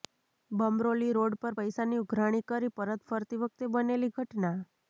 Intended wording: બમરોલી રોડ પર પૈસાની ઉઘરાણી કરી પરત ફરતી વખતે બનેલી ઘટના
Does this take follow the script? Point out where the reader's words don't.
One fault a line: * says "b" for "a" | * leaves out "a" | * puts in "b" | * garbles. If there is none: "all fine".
all fine